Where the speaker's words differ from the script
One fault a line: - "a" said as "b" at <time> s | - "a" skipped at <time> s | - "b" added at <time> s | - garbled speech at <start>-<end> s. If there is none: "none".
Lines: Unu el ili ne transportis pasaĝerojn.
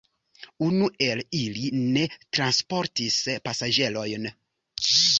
none